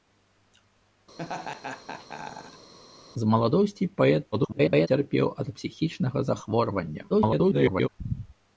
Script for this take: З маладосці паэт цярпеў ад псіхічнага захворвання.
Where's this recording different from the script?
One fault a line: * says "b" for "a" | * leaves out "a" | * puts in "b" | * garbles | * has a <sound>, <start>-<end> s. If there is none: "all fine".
* has a laugh, 1.2-2.7 s
* garbles
* garbles